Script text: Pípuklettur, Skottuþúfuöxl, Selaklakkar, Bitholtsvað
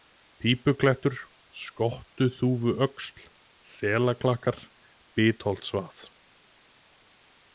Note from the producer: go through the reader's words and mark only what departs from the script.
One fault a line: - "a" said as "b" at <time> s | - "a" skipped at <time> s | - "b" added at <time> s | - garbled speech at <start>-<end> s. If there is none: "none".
none